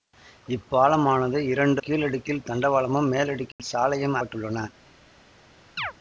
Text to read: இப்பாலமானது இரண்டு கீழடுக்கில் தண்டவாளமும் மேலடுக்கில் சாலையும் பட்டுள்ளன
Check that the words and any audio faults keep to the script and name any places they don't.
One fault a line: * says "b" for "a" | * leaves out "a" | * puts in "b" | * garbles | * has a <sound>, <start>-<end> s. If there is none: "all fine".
* has a dropout, 3.5-3.6 s
* has a chirp, 5.8-5.9 s